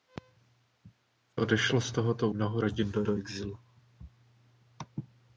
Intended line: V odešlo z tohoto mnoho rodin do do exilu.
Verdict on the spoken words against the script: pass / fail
pass